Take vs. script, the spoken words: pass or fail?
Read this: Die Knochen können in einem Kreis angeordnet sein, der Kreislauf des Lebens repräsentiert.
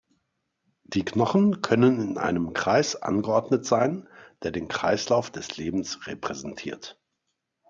fail